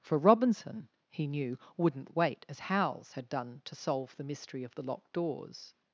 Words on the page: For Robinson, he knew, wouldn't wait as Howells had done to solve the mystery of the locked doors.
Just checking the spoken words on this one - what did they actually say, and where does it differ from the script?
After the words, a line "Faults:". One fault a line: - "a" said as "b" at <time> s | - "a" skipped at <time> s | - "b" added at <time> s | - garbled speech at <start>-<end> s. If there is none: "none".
For Robinson, he knew, wouldn't wait as Howells had done to solve the mystery of the locked doors.
Faults:
none